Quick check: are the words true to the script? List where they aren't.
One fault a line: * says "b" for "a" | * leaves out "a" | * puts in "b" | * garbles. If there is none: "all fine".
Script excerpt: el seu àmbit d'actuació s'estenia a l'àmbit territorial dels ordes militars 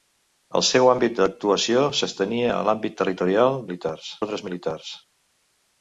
* says "militars" for "dels"